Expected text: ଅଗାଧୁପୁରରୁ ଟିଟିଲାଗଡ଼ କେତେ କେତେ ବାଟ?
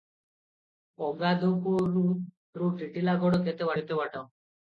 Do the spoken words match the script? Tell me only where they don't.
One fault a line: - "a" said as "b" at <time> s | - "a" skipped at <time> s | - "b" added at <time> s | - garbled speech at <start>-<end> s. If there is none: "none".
none